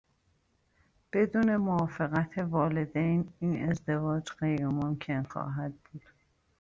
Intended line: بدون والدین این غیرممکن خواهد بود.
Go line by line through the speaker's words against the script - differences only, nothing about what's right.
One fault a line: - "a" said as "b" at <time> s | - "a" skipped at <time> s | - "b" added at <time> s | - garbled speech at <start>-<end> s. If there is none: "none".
- "موافقت" added at 1.6 s
- "ازدواج" added at 3.7 s